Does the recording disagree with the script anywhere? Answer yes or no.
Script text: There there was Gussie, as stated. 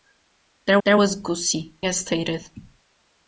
no